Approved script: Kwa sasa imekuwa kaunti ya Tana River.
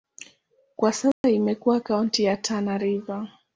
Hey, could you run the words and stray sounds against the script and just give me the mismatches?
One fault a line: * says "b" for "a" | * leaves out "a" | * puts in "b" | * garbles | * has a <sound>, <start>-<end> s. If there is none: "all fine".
* has a dropout, 1.1-1.2 s